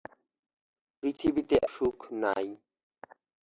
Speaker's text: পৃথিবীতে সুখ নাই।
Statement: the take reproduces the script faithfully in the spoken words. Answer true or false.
true